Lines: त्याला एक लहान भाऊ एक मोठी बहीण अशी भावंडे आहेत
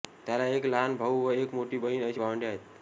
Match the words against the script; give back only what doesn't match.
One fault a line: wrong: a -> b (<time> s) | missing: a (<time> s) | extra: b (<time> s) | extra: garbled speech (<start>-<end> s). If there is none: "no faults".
extra: व (1.2 s)